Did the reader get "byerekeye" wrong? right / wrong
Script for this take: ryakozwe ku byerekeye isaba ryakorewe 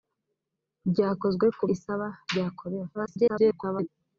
wrong